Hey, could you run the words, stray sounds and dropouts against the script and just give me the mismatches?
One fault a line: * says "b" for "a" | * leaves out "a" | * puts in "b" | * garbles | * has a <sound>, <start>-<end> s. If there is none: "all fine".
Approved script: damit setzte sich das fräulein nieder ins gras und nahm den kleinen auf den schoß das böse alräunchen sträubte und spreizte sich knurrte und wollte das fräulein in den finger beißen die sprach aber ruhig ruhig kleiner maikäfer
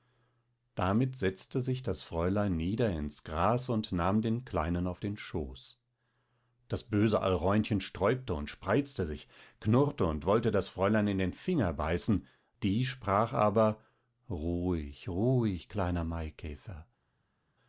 all fine